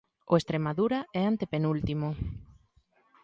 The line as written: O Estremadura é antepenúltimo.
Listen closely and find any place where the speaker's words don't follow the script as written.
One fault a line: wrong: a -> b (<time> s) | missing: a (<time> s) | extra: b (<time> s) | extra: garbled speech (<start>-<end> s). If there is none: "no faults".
no faults